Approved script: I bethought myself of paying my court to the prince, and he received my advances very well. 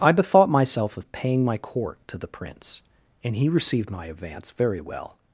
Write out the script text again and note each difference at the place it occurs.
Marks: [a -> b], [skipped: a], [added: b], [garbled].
I bethought myself of paying my court to the prince, and he received my [advances -> advance] very well.